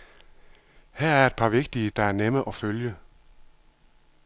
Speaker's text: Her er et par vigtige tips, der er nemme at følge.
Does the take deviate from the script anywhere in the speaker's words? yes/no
yes